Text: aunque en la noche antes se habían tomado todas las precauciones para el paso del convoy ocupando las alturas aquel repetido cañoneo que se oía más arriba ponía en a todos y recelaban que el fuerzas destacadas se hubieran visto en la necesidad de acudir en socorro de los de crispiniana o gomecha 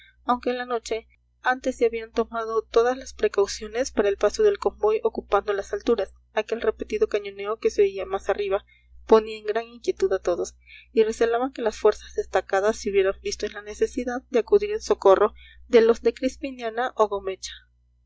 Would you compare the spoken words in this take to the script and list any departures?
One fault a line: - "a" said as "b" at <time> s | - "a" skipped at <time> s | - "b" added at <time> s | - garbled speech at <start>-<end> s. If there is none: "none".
- "gran inquietud" added at 9.4 s
- "el" said as "las" at 11.6 s